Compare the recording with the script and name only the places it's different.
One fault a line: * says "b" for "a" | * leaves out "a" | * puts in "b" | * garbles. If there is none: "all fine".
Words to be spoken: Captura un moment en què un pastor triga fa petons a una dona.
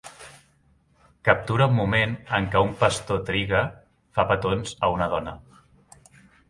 all fine